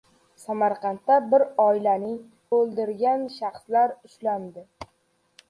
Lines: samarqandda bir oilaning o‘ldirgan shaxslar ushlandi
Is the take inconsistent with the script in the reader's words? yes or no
no